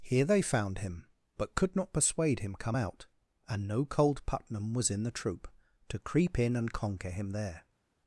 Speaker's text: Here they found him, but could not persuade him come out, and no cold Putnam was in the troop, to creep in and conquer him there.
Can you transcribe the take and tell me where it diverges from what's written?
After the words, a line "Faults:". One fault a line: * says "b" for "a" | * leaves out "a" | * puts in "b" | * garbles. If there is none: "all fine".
Here they found him, but could not persuade him come out, and no cold Putnam was in the troop, to creep in and conquer him there.
Faults:
all fine